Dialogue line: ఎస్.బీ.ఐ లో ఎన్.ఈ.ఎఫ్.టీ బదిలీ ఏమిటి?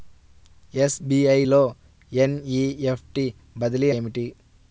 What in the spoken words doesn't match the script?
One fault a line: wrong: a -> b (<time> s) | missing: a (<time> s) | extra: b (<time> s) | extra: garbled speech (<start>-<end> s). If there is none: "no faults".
no faults